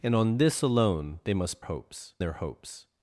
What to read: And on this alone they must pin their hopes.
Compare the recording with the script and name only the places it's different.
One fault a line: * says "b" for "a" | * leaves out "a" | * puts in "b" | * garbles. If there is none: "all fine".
* says "hopes" for "pin"